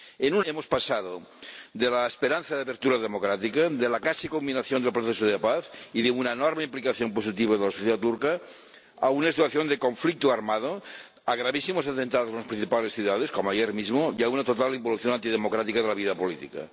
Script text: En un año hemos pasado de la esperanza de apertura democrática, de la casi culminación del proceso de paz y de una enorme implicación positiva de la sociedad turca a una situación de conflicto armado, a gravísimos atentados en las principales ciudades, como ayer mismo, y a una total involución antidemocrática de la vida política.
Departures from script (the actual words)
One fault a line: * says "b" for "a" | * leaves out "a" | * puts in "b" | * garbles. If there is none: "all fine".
* leaves out "año"